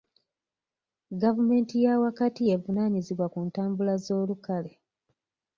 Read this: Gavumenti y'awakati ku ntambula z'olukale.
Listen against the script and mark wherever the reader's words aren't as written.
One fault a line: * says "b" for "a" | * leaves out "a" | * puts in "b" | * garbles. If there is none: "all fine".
* puts in "y'evunaanyizibwa"